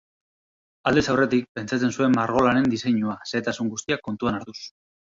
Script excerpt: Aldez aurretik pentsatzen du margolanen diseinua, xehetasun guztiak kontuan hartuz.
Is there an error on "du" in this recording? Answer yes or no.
yes